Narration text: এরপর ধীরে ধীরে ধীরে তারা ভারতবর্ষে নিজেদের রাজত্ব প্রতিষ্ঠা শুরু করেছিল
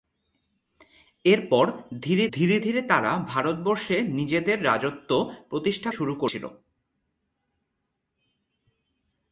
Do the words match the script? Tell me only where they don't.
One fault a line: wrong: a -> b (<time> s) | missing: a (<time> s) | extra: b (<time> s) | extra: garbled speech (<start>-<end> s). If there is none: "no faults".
no faults